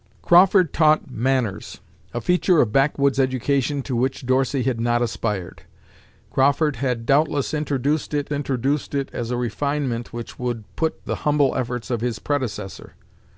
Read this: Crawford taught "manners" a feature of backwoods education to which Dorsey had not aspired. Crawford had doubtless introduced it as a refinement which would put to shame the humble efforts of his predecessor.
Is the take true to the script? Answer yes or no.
no